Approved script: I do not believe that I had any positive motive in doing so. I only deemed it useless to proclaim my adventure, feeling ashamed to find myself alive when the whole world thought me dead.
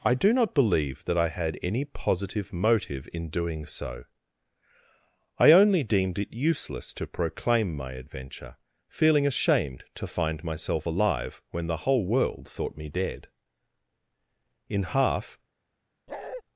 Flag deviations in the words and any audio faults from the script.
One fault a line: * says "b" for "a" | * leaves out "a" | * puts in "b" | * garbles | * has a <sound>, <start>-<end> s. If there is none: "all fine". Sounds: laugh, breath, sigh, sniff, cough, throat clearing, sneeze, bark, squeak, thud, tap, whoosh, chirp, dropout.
* puts in "In half"
* has a bark, 16.1-16.4 s